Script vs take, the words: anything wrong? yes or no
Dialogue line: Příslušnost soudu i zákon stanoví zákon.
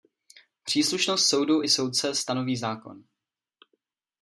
yes